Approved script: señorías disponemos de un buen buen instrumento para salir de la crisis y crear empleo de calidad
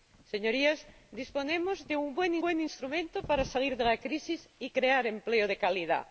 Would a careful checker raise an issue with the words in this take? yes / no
no